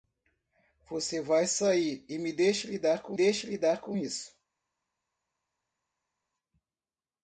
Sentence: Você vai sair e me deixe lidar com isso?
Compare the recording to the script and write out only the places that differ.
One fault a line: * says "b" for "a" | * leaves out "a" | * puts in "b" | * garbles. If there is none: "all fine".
* puts in "deixe lidar com"